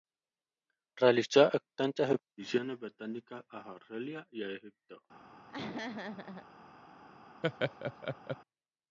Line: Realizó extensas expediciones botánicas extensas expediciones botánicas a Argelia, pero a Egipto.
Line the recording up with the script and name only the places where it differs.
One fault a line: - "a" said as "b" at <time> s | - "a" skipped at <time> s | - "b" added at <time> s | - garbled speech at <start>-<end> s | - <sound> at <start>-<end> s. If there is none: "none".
- "extensas expediciones botánicas" skipped at 3.5 s
- "pero" said as "y" at 4.3 s
- laugh at 5.5-6.5 s
- laugh at 7.4-8.4 s